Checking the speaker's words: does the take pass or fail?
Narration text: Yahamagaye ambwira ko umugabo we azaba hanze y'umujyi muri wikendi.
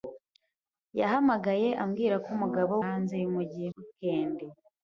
fail